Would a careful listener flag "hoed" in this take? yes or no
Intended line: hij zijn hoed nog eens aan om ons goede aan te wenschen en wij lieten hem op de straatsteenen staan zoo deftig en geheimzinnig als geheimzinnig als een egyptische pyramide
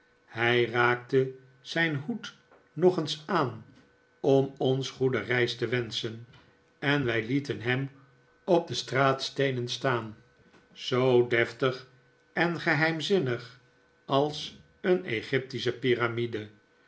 no